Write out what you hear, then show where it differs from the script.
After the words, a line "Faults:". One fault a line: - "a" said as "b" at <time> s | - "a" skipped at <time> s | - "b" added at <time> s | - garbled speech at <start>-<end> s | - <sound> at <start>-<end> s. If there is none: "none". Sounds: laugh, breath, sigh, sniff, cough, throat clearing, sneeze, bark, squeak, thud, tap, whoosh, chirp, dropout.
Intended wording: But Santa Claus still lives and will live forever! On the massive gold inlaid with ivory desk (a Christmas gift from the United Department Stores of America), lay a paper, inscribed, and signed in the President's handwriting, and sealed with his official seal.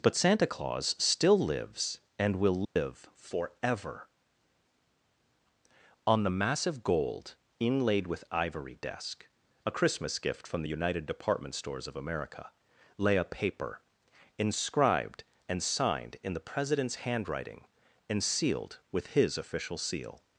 But Santa Claus still lives and will live forever! On the massive gold inlaid with ivory desk (a Christmas gift from the United Department Stores of America), lay a paper, inscribed, and signed in the President's handwriting, and sealed with his official seal.
Faults:
- dropout at 2.6-2.8 s